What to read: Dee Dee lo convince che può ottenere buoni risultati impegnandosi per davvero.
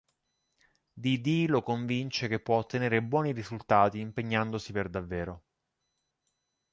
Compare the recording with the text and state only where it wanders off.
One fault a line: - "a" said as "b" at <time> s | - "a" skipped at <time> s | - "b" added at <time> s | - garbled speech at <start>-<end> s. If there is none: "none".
none